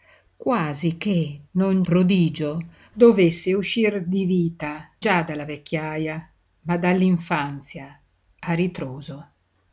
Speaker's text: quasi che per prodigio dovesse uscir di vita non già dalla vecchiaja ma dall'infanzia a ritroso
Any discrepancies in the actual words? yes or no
yes